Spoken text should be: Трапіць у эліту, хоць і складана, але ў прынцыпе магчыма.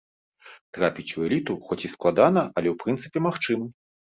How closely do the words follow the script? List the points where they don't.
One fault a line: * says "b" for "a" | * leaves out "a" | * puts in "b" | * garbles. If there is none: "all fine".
all fine